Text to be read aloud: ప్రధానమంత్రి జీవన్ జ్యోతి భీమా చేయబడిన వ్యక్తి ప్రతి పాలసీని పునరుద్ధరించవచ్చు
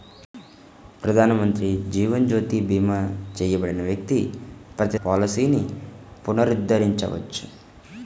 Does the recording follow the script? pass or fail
pass